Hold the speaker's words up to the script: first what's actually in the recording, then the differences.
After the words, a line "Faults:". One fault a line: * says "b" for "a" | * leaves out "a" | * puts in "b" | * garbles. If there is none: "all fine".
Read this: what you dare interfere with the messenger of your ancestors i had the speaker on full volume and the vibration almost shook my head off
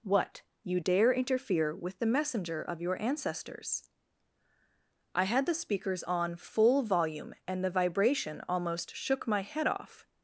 what you dare interfere with the messenger of your ancestors i had the speakers on full volume and the vibration almost shook my head off
Faults:
* says "speakers" for "speaker"